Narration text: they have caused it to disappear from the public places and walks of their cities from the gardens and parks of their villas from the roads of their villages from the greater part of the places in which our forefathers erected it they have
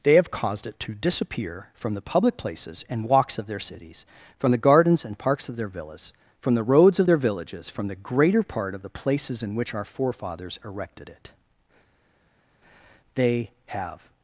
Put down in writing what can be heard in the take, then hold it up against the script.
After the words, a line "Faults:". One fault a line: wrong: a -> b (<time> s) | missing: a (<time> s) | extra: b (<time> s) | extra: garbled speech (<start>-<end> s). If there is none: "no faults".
they have caused it to disappear from the public places and walks of their cities from the gardens and parks of their villas from the roads of their villages from the greater part of the places in which our forefathers erected it they have
Faults:
no faults